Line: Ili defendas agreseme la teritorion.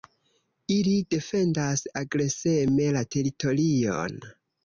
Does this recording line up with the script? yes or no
yes